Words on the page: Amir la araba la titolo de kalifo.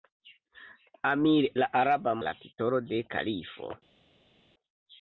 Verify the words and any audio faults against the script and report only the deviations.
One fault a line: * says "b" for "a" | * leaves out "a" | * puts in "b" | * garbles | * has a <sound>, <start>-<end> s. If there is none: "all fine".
all fine